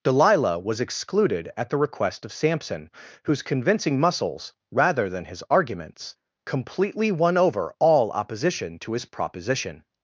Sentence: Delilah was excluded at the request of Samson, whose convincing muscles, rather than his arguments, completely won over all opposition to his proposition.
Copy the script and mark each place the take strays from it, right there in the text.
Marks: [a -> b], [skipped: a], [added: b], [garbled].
Delilah was excluded at the request of Samson, whose convincing muscles, rather than his arguments, completely won over all opposition to his proposition.